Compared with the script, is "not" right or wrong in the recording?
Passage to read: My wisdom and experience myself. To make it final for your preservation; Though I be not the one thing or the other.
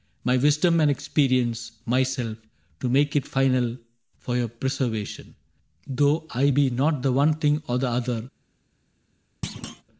right